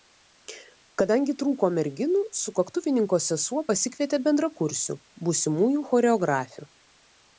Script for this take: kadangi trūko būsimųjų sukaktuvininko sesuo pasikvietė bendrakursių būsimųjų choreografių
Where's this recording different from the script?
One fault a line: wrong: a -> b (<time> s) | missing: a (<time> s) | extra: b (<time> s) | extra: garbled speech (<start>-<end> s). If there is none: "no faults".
wrong: būsimųjų -> merginų (1.8 s)